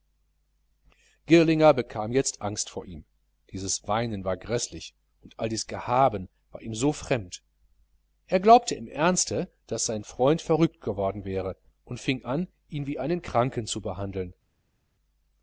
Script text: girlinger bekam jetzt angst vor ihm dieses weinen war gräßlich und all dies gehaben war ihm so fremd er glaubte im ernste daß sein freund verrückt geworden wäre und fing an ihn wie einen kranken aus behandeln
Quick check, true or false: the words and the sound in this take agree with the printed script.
false